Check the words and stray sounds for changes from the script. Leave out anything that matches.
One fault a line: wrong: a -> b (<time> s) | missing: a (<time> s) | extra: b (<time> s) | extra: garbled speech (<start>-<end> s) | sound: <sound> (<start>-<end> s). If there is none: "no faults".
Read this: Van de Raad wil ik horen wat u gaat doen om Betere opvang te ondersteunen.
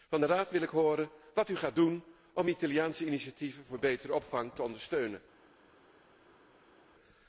extra: Italiaanse initiatieven voor (2.5 s)